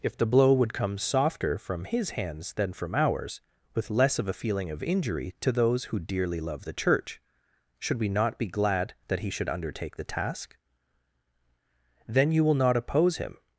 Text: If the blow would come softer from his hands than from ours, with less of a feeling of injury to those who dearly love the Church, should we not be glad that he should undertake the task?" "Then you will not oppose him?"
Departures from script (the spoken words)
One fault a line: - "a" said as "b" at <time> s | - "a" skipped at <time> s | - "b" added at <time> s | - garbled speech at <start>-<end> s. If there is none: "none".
none